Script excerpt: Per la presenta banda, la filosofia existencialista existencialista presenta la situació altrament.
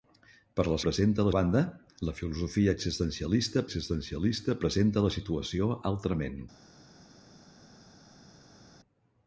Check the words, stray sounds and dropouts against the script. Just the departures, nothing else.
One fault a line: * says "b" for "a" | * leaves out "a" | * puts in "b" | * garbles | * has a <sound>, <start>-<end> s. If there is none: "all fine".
all fine